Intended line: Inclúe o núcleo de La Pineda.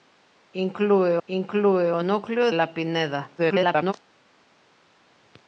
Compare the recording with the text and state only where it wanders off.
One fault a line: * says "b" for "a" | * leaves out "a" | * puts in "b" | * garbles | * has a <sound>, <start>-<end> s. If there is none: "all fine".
* puts in "inclúe"
* leaves out "de"
* garbles